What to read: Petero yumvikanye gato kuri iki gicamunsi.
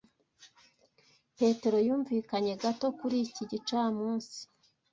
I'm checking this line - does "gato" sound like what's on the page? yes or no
yes